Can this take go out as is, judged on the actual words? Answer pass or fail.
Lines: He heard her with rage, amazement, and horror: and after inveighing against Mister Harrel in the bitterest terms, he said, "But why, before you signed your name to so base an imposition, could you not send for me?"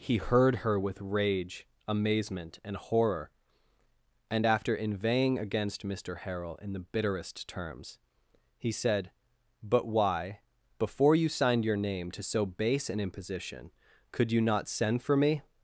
pass